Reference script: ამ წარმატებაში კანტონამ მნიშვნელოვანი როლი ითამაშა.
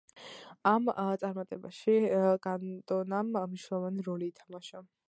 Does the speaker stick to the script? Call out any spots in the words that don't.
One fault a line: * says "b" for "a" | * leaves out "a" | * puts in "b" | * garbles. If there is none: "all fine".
all fine